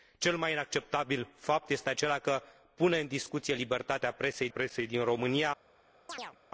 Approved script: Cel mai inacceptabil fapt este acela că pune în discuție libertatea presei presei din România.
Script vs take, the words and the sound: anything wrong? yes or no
yes